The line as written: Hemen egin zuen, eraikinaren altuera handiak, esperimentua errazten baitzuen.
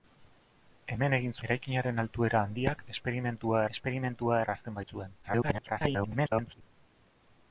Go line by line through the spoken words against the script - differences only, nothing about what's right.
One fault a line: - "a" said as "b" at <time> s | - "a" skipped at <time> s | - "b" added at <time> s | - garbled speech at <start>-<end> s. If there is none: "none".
- "zuen" skipped at 1.4 s
- "esperimentua" added at 3.8 s
- garbled speech at 5.2-6.6 s